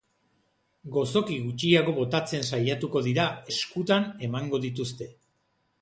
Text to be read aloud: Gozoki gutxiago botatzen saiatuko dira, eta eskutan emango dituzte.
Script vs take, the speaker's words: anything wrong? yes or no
yes